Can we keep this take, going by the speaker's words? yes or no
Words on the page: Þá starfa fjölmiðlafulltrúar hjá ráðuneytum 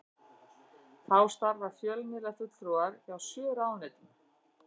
no